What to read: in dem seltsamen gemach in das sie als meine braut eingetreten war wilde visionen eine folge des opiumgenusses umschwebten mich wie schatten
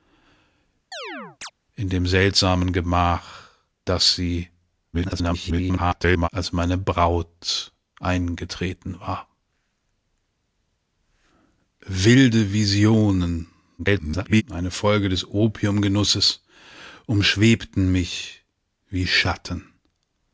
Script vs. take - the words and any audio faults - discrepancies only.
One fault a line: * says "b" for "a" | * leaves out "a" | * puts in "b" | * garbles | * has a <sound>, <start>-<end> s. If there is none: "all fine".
* has a chirp, 0.9-1.5 s
* leaves out "in"
* garbles
* garbles